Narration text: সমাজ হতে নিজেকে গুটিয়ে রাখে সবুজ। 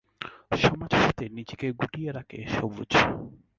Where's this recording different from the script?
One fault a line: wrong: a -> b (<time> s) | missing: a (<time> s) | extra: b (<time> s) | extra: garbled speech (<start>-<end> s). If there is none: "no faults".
no faults